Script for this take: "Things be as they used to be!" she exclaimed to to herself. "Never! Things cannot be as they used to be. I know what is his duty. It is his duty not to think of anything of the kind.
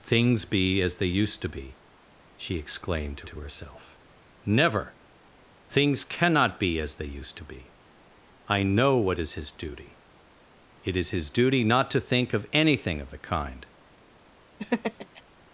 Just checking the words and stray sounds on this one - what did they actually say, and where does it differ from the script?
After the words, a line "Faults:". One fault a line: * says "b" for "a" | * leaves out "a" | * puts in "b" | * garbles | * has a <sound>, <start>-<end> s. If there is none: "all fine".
"Things be as they used to be!" she exclaimed to to herself. "Never! Things cannot be as they used to be. I know what is his duty. It is his duty not to think of anything of the kind.
Faults:
* has a laugh, 14.6-15.2 s